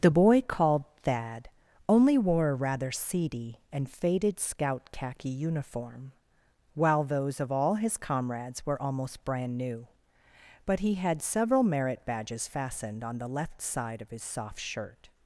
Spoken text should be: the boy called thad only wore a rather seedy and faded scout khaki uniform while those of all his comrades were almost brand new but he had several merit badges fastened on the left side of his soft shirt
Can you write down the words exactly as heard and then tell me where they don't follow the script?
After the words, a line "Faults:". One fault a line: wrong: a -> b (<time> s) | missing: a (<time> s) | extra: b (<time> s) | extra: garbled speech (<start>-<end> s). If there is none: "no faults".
the boy called thad only wore a rather seedy and faded scout khaki uniform while those of all his comrades were almost brand new but he had several merit badges fastened on the left side of his soft shirt
Faults:
no faults